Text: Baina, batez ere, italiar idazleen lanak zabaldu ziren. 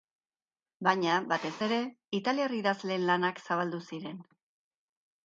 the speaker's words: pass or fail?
pass